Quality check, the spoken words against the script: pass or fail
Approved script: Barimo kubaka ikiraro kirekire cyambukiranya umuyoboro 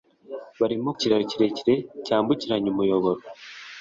fail